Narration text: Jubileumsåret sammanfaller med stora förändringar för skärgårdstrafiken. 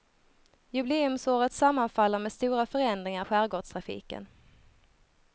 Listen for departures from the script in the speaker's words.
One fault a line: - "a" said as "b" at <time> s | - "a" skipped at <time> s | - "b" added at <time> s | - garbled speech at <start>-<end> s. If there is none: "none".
- "för" skipped at 3.2 s